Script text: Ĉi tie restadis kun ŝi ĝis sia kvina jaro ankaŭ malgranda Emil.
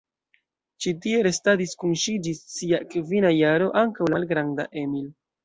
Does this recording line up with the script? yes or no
yes